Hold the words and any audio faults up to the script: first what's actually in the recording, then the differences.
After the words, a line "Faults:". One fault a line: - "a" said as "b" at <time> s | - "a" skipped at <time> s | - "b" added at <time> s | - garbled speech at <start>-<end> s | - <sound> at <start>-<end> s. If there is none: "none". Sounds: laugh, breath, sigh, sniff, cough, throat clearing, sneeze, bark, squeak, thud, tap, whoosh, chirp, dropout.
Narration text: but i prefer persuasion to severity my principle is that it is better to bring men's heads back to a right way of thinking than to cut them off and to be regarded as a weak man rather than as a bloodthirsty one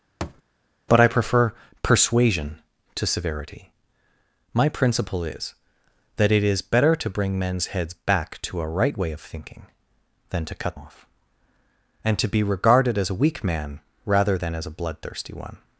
but i prefer persuasion to severity my principle is that it is better to bring men's heads back to a right way of thinking than to cut off and to be regarded as a weak man rather than as a bloodthirsty one
Faults:
- thud at 0.2-0.4 s
- "them" skipped at 10.8 s